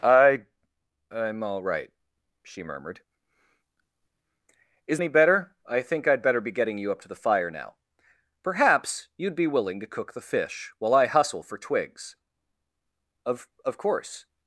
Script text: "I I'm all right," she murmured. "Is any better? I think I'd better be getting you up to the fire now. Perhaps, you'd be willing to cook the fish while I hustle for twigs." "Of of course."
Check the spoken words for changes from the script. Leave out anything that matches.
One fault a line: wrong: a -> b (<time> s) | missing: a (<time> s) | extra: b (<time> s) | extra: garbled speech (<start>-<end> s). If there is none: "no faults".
no faults